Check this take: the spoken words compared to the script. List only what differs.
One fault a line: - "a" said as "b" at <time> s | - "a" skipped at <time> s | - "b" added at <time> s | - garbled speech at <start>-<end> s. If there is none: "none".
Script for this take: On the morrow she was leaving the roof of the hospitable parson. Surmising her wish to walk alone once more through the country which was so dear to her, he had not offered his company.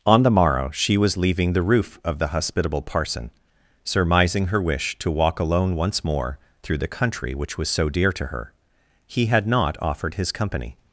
none